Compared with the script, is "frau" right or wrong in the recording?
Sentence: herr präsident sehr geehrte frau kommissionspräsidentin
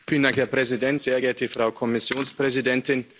right